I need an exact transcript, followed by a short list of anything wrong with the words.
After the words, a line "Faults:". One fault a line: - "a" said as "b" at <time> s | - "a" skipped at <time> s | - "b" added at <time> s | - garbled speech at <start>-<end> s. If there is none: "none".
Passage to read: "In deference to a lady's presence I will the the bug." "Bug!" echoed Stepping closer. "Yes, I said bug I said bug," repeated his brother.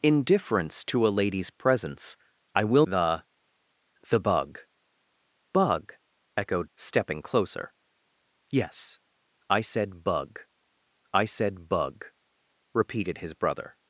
"In deference to a lady's presence I will the the bug." "Bug!" echoed Stepping closer. "Yes, I said bug I said bug," repeated his brother.
Faults:
none